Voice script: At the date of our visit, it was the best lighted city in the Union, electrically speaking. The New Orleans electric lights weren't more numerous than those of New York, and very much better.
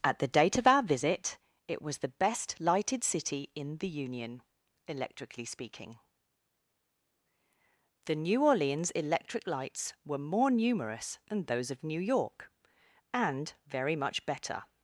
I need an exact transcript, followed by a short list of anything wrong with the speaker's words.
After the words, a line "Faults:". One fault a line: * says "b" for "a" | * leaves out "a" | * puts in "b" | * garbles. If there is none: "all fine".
At the date of our visit, it was the best lighted city in the Union, electrically speaking. The New Orleans electric lights were more numerous than those of New York, and very much better.
Faults:
* says "were" for "weren't"